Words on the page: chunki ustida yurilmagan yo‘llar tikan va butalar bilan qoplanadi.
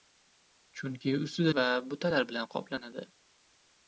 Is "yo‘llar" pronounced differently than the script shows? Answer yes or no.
yes